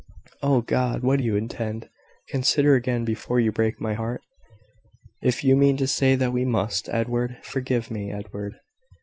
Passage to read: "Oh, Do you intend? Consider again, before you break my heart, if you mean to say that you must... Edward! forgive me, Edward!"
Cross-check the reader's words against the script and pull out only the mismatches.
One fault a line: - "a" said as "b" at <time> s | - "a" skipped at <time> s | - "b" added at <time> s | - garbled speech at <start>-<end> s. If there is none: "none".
- "God what" added at 0.6 s
- "you" said as "we" at 6.3 s